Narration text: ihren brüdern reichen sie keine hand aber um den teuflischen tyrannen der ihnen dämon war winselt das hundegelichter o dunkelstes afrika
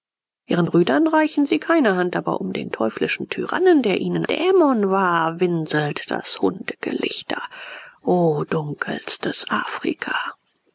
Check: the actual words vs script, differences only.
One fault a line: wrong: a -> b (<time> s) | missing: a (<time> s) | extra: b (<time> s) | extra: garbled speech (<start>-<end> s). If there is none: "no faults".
no faults